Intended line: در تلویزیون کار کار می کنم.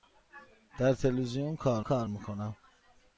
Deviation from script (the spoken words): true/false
false